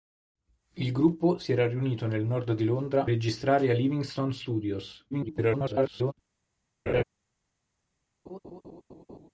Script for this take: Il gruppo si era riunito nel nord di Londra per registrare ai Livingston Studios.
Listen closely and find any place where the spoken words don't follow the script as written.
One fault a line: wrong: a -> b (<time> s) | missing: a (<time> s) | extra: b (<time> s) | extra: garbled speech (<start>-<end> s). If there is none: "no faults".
missing: per (3.0 s)
extra: garbled speech (5.1-6.1 s)